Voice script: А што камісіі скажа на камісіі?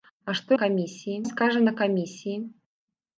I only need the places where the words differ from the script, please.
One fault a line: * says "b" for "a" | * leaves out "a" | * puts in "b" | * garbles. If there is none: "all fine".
all fine